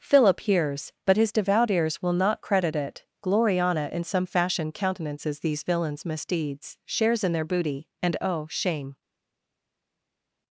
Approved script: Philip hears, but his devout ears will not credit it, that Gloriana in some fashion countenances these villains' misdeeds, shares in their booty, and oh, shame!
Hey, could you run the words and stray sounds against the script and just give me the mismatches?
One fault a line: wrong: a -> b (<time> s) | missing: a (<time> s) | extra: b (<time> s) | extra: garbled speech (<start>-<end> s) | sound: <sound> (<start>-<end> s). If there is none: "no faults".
missing: that (3.0 s)